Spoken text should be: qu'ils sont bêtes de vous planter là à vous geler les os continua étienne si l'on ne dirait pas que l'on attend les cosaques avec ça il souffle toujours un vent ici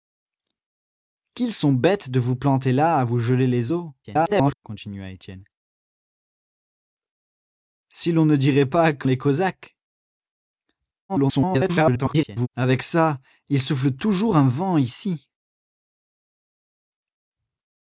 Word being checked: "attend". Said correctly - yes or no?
no